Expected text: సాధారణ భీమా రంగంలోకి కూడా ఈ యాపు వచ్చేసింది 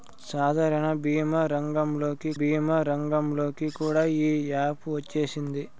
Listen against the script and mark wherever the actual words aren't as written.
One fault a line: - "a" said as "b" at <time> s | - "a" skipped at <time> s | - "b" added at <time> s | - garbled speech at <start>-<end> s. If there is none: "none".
- "భీమా రంగంలోకి" added at 2.4 s